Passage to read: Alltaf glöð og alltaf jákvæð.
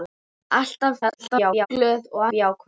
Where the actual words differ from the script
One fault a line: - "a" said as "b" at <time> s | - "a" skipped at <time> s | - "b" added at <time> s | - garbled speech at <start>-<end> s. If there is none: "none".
- garbled speech at 1.0-1.7 s
- "alltaf" skipped at 2.3 s